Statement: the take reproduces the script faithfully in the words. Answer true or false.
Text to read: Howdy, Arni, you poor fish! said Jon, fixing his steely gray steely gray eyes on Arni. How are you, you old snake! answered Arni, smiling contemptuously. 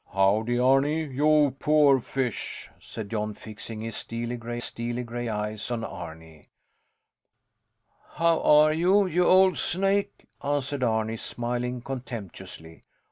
true